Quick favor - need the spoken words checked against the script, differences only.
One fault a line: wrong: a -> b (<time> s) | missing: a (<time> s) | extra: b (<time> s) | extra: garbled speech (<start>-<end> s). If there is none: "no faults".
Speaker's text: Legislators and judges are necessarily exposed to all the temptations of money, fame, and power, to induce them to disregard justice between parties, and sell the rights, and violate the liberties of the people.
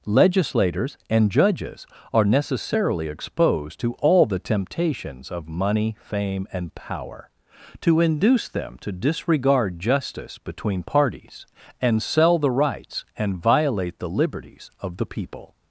no faults